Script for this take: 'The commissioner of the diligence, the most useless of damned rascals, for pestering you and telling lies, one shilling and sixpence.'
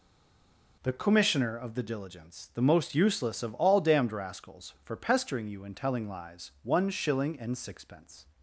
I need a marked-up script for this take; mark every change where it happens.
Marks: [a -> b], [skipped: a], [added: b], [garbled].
'The commissioner of the diligence, the most useless of [added: all] damned rascals, for pestering you and telling lies, one shilling and sixpence.'